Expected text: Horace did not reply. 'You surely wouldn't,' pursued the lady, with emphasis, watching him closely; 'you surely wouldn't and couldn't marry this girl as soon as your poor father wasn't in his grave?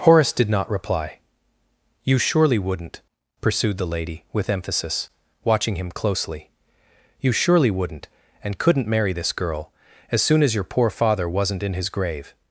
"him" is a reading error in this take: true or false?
false